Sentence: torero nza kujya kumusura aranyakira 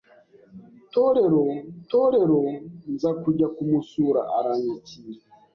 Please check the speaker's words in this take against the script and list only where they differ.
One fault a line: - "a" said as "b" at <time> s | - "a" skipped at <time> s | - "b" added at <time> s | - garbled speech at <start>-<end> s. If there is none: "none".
- "torero" added at 1.9 s